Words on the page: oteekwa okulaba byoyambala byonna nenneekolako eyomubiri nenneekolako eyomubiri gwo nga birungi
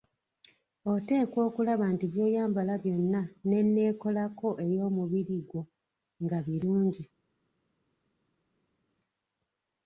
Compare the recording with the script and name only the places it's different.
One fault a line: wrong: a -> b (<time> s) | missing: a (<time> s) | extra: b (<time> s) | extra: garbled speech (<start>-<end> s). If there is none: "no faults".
extra: nti (1.9 s)
missing: nenneekolako eyomubiri (5.4 s)